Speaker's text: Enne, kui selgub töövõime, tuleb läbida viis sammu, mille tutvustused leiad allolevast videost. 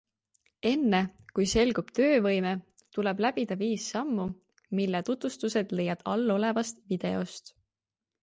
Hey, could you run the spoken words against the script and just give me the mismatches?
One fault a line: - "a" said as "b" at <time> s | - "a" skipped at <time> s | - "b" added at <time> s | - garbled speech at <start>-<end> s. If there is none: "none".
none